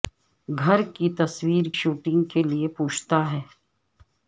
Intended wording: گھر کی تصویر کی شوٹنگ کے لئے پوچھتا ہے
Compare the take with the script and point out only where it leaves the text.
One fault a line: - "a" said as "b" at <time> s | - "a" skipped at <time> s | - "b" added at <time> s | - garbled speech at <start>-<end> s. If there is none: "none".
- "کی" skipped at 1.6 s